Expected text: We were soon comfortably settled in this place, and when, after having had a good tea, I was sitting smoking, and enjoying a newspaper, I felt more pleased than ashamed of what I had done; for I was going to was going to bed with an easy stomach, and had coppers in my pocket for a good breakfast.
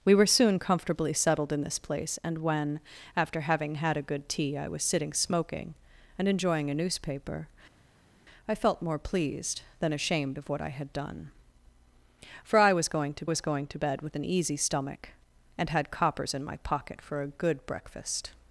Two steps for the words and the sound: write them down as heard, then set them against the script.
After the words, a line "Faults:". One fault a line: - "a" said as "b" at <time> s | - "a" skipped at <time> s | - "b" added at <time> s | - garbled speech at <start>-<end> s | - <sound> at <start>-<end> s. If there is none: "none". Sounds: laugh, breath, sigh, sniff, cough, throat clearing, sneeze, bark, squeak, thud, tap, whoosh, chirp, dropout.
We were soon comfortably settled in this place, and when, after having had a good tea, I was sitting smoking, and enjoying a newspaper, I felt more pleased than ashamed of what I had done; for I was going to was going to bed with an easy stomach, and had coppers in my pocket for a good breakfast.
Faults:
none